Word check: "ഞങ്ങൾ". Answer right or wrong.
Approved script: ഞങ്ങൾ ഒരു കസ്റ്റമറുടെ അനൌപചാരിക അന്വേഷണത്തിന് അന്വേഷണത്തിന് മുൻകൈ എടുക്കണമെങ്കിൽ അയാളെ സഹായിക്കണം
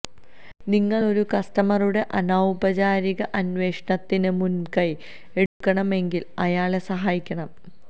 wrong